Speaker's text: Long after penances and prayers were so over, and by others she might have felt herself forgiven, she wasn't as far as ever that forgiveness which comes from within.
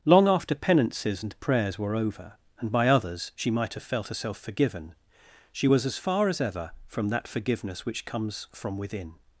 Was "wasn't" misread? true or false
true